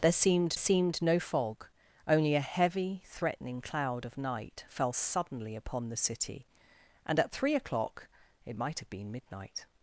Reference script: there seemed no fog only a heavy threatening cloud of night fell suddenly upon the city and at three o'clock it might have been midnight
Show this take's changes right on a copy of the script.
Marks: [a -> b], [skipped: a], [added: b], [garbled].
there seemed [added: seemed] no fog only a heavy threatening cloud of night fell suddenly upon the city and at three o'clock it might have been midnight